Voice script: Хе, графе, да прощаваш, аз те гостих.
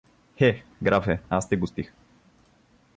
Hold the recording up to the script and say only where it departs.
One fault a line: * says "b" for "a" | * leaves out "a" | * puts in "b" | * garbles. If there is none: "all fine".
* leaves out "да прощаваш"